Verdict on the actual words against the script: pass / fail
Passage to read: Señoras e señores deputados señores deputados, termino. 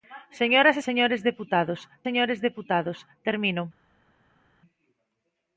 pass